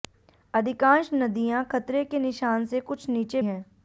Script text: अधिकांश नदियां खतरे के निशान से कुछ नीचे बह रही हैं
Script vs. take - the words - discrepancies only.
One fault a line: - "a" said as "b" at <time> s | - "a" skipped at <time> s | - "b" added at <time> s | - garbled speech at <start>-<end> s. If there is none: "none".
- "बह रही" skipped at 3.4 s